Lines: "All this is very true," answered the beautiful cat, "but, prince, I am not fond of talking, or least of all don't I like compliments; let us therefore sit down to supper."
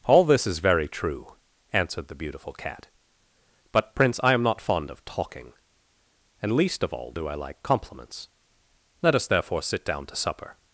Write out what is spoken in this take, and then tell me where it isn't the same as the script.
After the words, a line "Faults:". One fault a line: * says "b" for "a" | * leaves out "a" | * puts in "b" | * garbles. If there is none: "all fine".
"All this is very true," answered the beautiful cat, "but, prince, I am not fond of talking, and least of all do I like compliments; let us therefore sit down to supper."
Faults:
* says "and" for "or"
* says "do" for "don't"